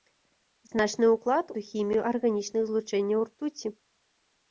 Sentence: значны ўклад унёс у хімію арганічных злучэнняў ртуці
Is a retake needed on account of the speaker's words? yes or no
yes